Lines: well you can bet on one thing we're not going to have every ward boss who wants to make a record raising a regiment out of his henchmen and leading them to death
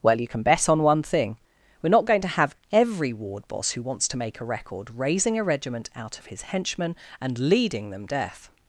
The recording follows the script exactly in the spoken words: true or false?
false